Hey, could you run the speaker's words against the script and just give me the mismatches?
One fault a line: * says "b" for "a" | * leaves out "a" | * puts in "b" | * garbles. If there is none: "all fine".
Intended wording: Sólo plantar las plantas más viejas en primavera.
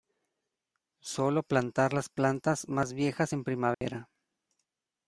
all fine